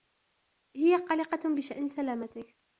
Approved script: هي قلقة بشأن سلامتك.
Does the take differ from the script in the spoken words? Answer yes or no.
no